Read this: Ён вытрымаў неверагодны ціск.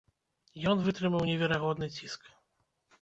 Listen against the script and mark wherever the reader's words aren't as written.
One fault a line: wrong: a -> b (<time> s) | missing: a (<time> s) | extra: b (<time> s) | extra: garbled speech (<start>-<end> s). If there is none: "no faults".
no faults